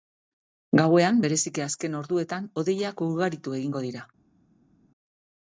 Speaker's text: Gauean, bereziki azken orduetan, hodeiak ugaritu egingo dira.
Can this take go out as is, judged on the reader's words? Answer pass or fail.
pass